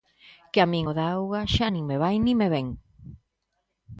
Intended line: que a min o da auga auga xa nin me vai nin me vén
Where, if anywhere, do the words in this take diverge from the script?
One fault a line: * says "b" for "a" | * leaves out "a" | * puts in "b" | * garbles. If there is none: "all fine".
* leaves out "auga"